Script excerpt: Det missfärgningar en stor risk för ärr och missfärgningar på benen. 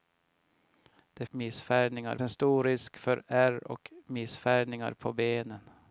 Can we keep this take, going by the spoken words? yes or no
yes